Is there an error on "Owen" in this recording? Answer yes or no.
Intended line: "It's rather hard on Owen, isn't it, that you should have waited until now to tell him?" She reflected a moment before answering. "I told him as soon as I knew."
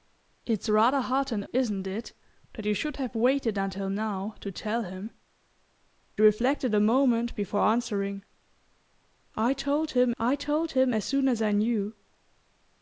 yes